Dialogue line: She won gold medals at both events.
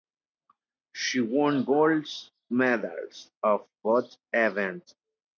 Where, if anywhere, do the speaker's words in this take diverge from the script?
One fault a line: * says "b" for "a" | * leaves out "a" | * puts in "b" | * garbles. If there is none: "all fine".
all fine